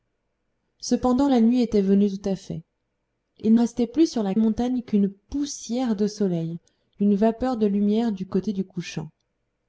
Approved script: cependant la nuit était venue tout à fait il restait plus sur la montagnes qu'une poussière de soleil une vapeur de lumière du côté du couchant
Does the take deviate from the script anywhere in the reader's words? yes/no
no